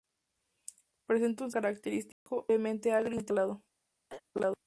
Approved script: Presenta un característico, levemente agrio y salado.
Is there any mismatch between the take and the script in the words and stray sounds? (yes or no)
yes